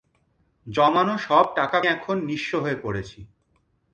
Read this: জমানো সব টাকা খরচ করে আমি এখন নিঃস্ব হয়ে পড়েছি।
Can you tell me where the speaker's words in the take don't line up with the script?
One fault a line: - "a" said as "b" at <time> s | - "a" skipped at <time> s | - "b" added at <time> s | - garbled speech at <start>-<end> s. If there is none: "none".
- "খরচ করে আমি" skipped at 1.8 s